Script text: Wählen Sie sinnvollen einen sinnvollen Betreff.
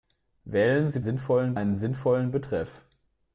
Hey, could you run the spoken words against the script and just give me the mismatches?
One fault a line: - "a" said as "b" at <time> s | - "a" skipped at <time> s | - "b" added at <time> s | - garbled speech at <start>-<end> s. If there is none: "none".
none